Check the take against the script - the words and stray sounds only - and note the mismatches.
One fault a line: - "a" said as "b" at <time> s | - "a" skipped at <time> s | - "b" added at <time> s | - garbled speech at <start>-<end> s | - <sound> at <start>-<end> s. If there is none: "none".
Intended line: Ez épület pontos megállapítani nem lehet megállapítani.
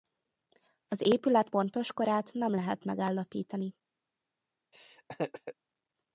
- "Ez" said as "Az" at 0.9 s
- "megállapítani" said as "korát" at 1.9 s
- laugh at 4.7-5.5 s